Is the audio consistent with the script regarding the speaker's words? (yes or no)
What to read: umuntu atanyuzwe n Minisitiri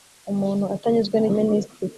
yes